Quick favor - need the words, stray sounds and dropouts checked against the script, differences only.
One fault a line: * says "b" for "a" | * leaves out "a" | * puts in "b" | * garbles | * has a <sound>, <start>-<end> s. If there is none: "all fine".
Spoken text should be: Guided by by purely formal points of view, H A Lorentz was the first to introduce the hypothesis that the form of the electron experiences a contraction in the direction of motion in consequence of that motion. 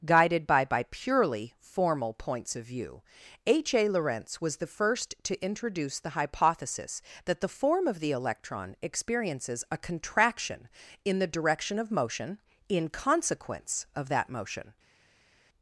all fine